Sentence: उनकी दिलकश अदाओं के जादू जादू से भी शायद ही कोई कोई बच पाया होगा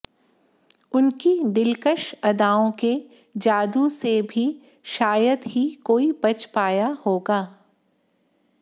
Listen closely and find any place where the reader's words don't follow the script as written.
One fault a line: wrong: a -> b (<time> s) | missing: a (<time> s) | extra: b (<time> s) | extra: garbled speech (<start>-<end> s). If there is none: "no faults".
missing: जादू (3.9 s)
missing: कोई (6.1 s)